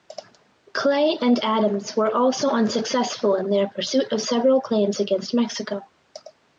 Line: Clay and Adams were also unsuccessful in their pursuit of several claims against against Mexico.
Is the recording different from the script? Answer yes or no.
yes